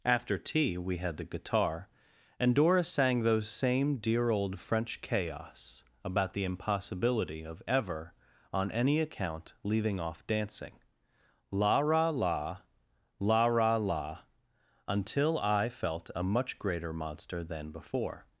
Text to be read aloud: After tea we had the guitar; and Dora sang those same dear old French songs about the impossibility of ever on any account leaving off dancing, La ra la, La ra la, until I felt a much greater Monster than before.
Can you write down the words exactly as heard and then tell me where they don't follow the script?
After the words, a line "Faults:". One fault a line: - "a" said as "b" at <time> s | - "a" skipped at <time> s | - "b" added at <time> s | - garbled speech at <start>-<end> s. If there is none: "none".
After tea we had the guitar; and Dora sang those same dear old French chaos about the impossibility of ever on any account leaving off dancing, La ra la, La ra la, until I felt a much greater Monster than before.
Faults:
- "songs" said as "chaos" at 5.0 s